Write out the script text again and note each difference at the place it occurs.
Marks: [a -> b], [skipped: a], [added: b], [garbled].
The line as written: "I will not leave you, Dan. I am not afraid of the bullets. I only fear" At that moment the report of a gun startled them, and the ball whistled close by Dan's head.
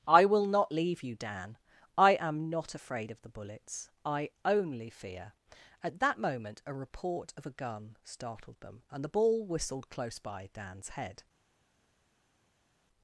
"I will not leave you, Dan. I am not afraid of the bullets. I only fear" At that moment [the -> a] report of a gun startled them, and the ball whistled close by Dan's head.